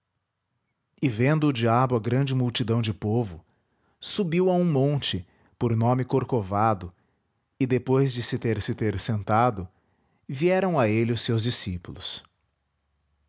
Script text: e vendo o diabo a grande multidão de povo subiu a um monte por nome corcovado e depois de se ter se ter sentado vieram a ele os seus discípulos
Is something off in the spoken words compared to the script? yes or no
no